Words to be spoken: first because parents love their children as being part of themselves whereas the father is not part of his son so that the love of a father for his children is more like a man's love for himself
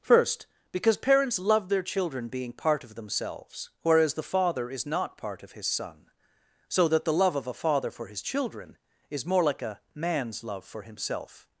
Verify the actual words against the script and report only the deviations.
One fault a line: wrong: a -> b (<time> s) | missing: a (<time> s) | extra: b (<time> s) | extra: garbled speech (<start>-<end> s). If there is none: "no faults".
missing: as (2.3 s)